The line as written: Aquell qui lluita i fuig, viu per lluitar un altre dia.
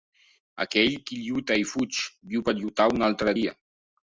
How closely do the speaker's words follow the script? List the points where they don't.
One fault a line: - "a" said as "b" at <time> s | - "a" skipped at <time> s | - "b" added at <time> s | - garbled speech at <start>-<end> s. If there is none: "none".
none